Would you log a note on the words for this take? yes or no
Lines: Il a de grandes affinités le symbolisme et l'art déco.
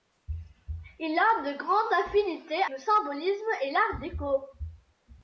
no